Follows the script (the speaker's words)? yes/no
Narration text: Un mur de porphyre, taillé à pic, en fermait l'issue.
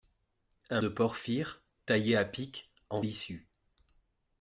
no